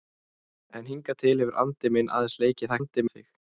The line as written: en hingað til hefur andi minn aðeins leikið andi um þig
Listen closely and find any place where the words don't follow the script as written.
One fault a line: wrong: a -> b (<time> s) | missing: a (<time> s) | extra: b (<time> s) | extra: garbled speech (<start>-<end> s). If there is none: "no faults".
no faults